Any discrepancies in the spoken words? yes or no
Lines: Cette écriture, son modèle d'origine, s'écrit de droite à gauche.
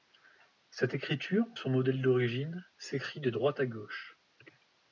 no